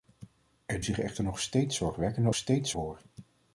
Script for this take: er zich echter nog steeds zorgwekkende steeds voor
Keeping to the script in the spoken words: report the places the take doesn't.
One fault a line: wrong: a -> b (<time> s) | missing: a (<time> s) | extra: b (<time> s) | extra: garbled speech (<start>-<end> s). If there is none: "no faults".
no faults